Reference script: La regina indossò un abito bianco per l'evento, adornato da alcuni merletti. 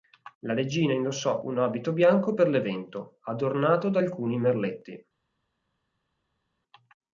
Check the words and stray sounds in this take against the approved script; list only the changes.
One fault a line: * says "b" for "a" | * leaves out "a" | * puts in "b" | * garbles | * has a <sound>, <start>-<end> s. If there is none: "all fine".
all fine